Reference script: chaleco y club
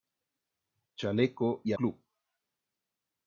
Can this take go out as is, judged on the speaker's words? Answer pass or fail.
pass